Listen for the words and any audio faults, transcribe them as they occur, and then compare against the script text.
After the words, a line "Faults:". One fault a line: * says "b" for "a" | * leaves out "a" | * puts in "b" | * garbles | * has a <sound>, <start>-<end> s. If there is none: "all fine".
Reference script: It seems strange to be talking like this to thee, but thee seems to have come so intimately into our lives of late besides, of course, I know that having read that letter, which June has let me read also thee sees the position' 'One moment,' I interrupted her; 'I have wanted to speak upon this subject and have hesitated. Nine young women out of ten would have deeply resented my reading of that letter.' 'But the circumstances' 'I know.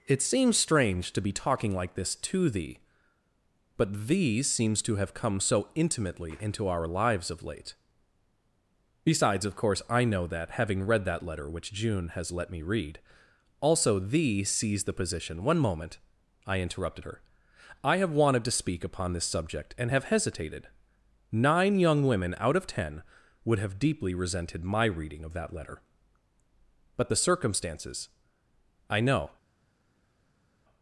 It seems strange to be talking like this to thee, but thee seems to have come so intimately into our lives of late besides, of course, I know that having read that letter, which June has let me read also thee sees the position' 'One moment,' I interrupted her; 'I have wanted to speak upon this subject and have hesitated. Nine young women out of ten would have deeply resented my reading of that letter.' 'But the circumstances' 'I know.
Faults:
all fine